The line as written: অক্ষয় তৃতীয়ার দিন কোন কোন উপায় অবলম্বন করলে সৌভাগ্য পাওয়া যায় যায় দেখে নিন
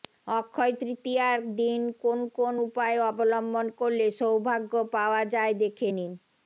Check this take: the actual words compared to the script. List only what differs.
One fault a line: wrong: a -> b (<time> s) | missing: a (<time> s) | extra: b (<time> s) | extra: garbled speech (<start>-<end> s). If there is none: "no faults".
missing: যায় (5.5 s)